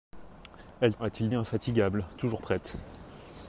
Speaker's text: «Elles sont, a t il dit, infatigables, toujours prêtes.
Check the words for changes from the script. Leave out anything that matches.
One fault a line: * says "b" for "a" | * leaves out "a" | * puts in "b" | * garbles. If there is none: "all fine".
* leaves out "sont"
* leaves out "dit"